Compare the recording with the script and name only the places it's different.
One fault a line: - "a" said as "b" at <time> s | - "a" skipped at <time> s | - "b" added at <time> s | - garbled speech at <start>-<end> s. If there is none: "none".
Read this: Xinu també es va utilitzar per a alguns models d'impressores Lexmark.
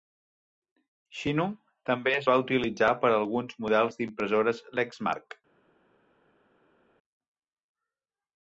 none